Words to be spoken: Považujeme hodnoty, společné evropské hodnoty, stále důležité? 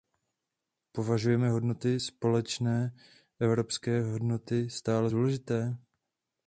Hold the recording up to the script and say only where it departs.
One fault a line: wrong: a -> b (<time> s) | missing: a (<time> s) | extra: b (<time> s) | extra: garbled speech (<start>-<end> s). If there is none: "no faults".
no faults